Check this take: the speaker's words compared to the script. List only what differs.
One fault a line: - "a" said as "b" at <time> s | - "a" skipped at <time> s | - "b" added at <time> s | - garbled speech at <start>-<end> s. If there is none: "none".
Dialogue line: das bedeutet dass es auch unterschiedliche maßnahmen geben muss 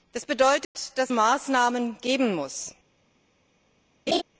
- "es auch unterschiedliche" skipped at 1.1 s